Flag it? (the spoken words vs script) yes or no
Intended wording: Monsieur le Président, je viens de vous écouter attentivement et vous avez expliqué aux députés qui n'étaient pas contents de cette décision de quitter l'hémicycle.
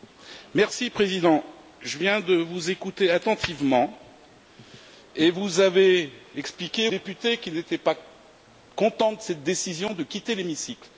yes